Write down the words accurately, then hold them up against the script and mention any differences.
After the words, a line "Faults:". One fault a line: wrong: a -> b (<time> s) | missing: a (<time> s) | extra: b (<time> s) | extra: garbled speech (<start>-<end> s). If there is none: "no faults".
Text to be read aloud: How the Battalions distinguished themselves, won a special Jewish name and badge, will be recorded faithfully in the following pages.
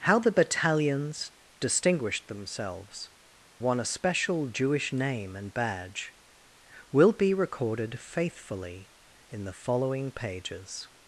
How the Battalions distinguished themselves, won a special Jewish name and badge, will be recorded faithfully in the following pages.
Faults:
no faults